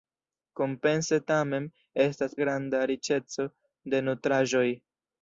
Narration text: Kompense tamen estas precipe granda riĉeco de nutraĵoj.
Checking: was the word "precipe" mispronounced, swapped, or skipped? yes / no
yes